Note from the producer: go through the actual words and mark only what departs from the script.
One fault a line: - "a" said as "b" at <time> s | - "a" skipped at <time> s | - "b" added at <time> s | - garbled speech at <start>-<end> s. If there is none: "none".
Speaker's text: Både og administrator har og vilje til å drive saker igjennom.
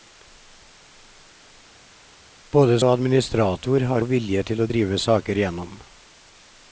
none